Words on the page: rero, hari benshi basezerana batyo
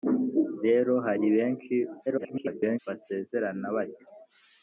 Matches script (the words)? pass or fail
fail